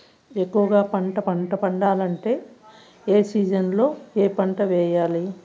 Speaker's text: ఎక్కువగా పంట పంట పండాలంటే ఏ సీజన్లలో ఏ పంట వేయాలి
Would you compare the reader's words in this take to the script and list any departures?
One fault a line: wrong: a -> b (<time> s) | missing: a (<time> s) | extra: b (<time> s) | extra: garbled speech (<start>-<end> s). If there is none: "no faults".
no faults